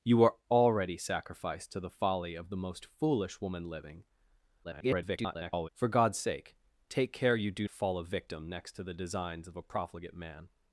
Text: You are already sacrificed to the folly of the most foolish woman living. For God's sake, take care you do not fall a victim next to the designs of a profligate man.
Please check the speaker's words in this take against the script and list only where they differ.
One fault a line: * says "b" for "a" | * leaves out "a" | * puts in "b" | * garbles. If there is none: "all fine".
* garbles
* leaves out "not"